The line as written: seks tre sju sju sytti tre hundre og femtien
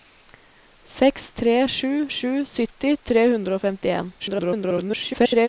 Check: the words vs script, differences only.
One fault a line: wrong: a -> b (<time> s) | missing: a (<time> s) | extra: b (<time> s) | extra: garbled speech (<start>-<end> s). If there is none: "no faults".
extra: garbled speech (4.2-5.5 s)